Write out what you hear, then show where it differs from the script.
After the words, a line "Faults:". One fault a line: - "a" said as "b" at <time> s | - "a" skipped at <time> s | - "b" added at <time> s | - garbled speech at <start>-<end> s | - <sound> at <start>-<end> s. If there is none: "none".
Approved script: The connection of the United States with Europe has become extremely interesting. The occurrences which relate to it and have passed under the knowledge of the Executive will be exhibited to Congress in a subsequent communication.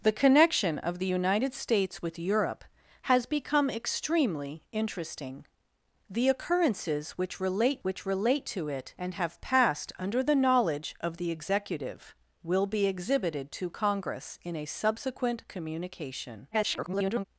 The connection of the United States with Europe has become extremely interesting. The occurrences which relate which relate to it and have passed under the knowledge of the Executive will be exhibited to Congress in a subsequent communication. [garbled]
Faults:
- "which relate" added at 7.8 s
- garbled speech at 16.5-17.3 s